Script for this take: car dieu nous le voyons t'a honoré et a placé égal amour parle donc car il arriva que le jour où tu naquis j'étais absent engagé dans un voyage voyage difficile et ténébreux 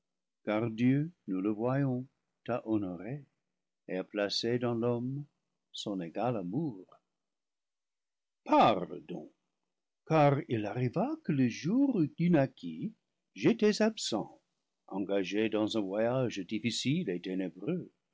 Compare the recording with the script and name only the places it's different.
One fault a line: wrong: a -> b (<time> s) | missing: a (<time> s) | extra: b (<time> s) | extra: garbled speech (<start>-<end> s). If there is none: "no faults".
extra: dans l'homme son (4.6 s)
missing: voyage (16.4 s)